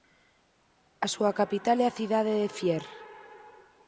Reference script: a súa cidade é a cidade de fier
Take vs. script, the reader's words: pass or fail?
fail